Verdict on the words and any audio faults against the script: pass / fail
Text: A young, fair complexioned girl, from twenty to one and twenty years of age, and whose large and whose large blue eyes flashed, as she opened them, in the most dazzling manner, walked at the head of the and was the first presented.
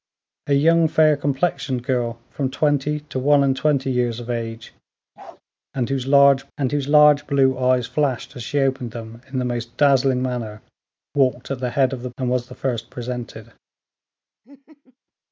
fail